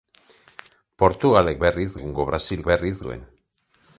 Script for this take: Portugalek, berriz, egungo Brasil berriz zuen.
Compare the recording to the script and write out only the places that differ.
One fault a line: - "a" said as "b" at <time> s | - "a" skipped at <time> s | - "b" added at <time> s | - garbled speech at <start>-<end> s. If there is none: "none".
none